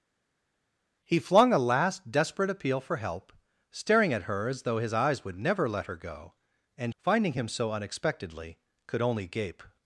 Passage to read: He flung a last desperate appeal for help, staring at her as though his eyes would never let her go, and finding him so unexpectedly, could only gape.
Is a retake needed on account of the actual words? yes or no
no